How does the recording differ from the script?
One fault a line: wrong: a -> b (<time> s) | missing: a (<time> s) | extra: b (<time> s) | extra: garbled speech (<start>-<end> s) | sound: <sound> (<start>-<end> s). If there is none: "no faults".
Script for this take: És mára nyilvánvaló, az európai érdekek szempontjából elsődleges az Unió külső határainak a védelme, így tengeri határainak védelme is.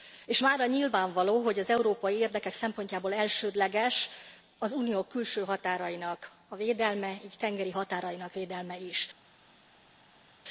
extra: hogy (1.4 s)